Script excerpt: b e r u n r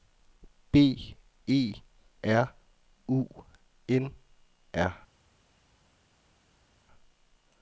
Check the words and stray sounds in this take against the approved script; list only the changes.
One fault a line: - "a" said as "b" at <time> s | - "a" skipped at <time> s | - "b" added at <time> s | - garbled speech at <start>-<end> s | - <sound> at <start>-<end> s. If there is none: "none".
none